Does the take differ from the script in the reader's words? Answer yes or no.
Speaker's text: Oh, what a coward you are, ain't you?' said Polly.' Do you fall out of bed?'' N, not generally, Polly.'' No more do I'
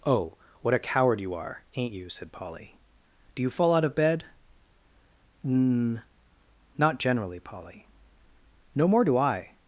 no